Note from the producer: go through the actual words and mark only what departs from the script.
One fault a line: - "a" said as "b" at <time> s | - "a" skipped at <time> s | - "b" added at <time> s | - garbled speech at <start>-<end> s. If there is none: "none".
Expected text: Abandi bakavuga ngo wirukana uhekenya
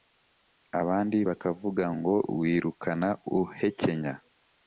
none